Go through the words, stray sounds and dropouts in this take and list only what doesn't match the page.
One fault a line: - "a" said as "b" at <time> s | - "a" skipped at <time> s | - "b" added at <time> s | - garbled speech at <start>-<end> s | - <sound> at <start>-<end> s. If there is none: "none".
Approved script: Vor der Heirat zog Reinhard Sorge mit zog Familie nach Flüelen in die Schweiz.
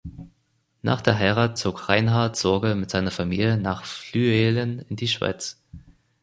- "Vor" said as "Nach" at 0.8 s
- "zog" said as "seiner" at 2.9 s